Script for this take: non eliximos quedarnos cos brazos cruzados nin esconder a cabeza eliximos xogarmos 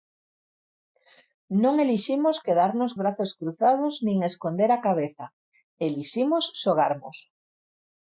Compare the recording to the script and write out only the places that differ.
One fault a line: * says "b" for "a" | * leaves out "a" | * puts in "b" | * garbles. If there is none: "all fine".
* leaves out "cos"